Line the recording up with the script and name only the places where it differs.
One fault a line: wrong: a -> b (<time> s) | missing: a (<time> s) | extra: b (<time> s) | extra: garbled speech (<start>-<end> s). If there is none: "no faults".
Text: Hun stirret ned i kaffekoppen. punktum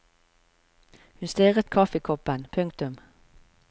missing: ned (1.7 s)